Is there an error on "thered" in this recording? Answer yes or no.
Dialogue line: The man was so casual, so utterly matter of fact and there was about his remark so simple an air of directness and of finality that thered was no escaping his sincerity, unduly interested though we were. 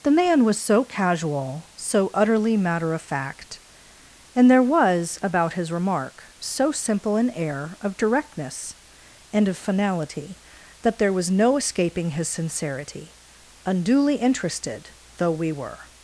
yes